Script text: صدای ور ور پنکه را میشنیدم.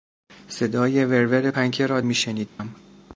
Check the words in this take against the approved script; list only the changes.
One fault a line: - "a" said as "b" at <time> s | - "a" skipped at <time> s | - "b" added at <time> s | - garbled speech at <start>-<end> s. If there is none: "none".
none